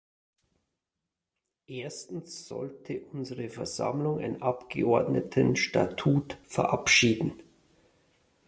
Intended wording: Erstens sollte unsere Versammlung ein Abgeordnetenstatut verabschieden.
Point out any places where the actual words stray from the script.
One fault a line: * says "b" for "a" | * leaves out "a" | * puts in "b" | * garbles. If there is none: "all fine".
all fine